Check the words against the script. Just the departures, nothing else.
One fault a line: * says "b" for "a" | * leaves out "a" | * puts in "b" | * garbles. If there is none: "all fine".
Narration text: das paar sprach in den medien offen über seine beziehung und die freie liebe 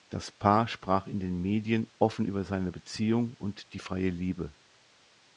all fine